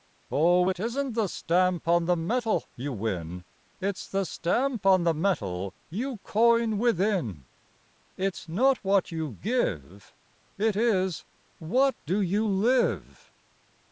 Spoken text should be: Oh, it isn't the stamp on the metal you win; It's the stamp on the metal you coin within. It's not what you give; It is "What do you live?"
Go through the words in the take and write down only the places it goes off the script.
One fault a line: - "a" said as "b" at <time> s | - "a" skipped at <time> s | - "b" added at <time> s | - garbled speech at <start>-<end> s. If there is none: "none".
none